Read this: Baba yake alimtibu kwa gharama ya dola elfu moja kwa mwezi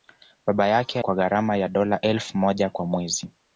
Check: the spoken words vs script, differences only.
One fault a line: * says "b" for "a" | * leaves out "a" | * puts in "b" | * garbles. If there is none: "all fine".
* leaves out "alimtibu"